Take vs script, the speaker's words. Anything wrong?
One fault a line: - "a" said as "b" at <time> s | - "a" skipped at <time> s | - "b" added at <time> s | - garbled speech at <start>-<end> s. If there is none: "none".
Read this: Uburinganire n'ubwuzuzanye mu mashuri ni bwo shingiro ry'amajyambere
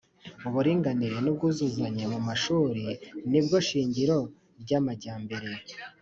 none